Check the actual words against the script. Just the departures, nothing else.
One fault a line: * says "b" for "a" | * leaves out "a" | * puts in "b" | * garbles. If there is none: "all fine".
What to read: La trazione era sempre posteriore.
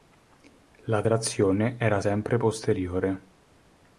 all fine